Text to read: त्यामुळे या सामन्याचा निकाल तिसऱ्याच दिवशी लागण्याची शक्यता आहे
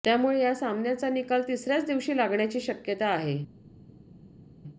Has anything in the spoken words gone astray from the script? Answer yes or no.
no